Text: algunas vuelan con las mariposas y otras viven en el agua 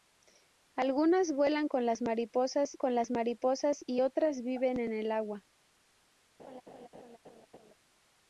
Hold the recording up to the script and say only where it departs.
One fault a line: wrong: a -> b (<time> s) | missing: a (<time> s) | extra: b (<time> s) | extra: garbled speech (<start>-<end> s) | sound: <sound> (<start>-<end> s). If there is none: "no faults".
extra: con las mariposas (2.8 s)
sound: laugh (6.4-7.7 s)